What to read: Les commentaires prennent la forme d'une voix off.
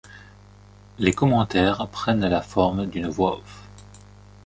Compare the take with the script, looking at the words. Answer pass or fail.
pass